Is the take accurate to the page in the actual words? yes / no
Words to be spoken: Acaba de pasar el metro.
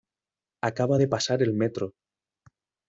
yes